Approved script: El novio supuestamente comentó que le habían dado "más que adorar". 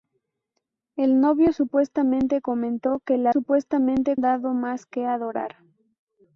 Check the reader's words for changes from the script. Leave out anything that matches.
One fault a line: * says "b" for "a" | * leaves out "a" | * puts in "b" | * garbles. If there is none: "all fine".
* says "supuestamente" for "habían"